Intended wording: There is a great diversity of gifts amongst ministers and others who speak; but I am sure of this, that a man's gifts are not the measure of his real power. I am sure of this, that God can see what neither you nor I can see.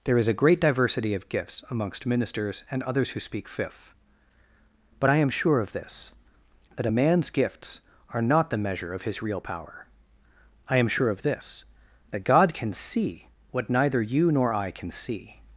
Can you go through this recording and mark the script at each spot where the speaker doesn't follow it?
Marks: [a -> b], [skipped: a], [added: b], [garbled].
There is a great diversity of gifts amongst ministers and others who speak; [added: fifth] but I am sure of this, that a man's gifts are not the measure of his real power. I am sure of this, that God can see what neither you nor I can see.